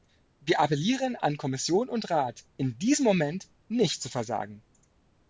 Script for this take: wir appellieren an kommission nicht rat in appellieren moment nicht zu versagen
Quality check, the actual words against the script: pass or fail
fail